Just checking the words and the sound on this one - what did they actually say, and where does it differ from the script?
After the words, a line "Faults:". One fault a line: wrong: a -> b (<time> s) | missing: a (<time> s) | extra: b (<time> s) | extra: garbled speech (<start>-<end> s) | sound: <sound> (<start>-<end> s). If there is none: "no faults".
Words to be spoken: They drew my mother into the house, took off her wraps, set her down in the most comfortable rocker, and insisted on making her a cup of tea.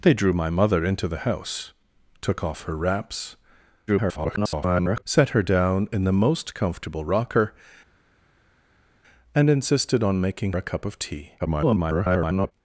They drew my mother into the house, took off her wraps, [garbled] set her down in the most comfortable rocker, and insisted on making a cup of tea. [garbled]
Faults:
extra: garbled speech (3.9-5.0 s)
missing: her (10.5 s)
extra: garbled speech (11.4-12.5 s)